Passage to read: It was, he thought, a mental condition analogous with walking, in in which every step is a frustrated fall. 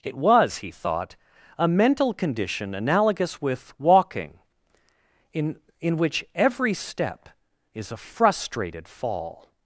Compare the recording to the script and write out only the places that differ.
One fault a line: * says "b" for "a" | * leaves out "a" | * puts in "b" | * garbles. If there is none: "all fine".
all fine